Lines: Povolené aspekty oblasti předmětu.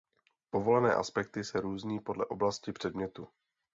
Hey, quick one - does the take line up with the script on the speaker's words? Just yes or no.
no